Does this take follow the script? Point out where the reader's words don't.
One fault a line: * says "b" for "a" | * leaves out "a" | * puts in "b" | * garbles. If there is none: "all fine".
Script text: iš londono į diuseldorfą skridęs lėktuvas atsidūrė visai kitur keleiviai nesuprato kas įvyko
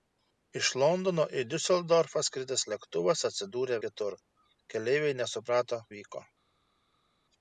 * leaves out "visai"
* leaves out "kas"